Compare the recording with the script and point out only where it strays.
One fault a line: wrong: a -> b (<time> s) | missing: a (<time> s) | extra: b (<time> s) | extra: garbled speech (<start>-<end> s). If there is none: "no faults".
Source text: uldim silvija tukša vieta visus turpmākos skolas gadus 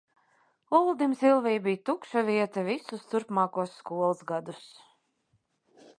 extra: bija (1.6 s)